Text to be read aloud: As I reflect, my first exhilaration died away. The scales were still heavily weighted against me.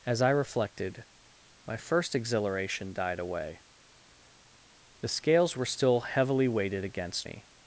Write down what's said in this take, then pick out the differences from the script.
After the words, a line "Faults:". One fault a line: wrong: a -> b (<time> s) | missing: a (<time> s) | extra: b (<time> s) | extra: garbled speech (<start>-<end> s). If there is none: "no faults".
As I reflected, my first exhilaration died away. The scales were still heavily weighted against me.
Faults:
wrong: reflect -> reflected (0.3 s)